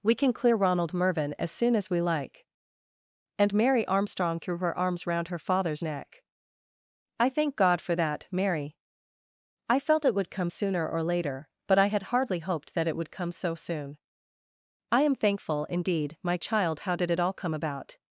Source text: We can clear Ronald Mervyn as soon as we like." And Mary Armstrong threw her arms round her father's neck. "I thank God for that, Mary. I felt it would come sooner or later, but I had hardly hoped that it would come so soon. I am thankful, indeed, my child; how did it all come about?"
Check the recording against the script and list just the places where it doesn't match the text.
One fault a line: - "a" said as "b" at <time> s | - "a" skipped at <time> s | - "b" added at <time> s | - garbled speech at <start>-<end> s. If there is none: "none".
none